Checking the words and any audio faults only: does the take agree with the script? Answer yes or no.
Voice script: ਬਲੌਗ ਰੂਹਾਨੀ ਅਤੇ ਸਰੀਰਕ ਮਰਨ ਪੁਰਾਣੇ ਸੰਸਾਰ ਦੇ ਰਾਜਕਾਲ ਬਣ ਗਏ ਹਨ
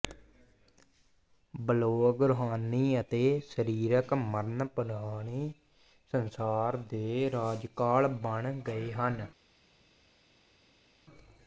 yes